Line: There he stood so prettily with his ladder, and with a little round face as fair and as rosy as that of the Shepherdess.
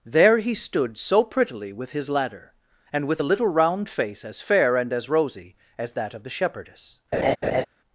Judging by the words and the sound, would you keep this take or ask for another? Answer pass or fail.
fail